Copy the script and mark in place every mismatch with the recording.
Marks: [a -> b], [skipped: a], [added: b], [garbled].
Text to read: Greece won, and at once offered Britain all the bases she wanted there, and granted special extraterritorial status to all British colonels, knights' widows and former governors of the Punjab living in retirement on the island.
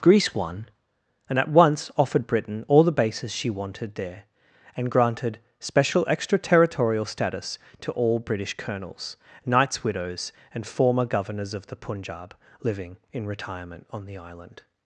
Greece won, and at once offered Britain all the bases she wanted there, and granted special extraterritorial status to all British colonels, knights' widows and former governors of the Punjab living in retirement on the island.